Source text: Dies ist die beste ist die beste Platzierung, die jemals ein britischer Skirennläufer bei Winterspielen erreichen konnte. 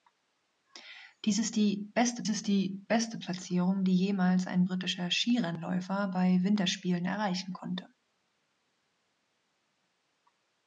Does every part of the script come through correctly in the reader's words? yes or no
yes